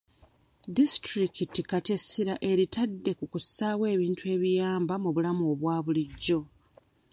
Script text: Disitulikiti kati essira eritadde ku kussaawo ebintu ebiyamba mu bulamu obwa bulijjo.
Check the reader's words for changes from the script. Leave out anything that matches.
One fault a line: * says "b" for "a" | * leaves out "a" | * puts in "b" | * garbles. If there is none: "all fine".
all fine